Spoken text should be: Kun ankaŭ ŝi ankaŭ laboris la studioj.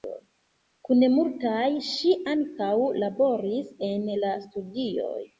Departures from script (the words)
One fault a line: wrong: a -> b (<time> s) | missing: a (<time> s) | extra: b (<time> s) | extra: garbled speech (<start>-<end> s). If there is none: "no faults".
wrong: ankaŭ -> multaj (1.1 s)
extra: en (3.9 s)